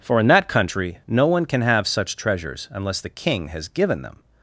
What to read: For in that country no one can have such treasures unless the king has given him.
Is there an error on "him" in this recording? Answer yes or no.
yes